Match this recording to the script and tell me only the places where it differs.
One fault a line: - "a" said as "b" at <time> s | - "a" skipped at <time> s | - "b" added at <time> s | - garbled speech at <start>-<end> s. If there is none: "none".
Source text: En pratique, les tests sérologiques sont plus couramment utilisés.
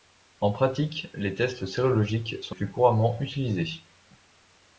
none